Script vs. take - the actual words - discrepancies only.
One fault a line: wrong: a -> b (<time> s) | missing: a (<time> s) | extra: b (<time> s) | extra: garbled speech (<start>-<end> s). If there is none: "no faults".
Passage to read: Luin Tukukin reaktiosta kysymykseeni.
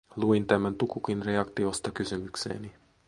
extra: tämän (0.5 s)